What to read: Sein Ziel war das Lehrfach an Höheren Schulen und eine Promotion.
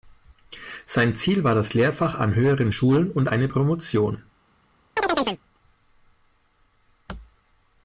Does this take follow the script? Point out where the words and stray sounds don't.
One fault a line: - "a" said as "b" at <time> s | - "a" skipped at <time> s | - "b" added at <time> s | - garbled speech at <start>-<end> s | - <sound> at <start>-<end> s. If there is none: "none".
- chirp at 5.0-5.4 s